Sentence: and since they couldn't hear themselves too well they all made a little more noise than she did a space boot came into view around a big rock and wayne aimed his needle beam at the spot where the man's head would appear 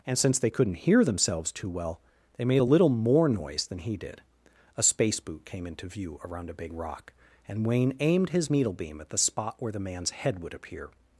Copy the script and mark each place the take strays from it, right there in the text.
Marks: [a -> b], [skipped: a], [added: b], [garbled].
and since they couldn't hear themselves too well they [skipped: all] made a little more noise than [she -> he] did a space boot came into view around a big rock and wayne aimed his needle beam at the spot where the man's head would appear